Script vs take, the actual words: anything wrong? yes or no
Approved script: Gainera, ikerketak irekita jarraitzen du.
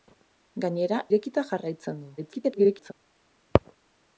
yes